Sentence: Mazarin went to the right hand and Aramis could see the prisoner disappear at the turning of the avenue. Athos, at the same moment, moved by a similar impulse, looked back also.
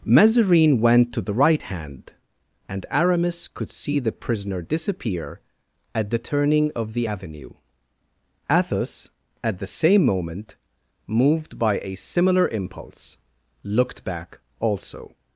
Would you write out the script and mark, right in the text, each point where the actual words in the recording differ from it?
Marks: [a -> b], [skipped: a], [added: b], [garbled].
Mazarin went to the right hand and Aramis could see the prisoner disappear at the turning of the avenue. Athos, at the same moment, moved by a similar impulse, looked back also.